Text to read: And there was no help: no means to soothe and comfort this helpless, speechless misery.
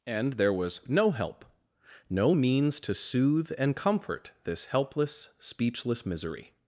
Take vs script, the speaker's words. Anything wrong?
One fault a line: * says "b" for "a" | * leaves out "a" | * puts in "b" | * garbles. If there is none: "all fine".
all fine